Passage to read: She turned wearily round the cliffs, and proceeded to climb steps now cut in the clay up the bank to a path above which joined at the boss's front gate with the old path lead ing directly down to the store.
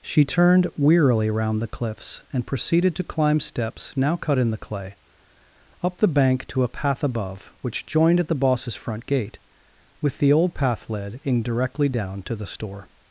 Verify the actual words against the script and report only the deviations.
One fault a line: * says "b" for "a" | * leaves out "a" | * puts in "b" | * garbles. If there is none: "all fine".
* says "led in" for "lead ing"